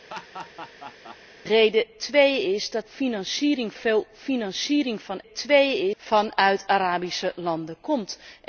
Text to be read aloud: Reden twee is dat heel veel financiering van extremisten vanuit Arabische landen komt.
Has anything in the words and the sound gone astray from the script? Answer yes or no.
yes